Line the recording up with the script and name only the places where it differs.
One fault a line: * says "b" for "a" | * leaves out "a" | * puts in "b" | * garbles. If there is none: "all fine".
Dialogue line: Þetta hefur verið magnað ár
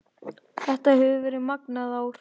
all fine